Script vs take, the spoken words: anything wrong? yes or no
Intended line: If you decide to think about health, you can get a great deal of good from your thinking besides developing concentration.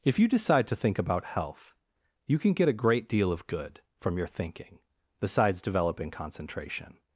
no